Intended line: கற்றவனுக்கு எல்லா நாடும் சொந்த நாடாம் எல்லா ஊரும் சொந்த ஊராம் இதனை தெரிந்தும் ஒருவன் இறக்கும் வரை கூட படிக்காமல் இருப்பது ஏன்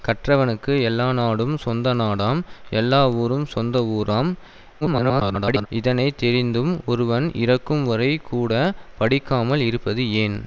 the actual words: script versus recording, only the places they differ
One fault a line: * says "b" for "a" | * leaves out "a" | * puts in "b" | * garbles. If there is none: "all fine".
* garbles